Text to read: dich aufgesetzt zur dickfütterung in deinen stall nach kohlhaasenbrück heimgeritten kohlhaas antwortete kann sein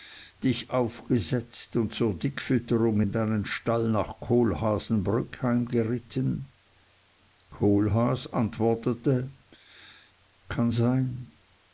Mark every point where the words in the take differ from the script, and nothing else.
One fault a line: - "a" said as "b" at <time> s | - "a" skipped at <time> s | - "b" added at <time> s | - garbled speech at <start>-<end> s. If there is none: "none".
- "und" added at 1.7 s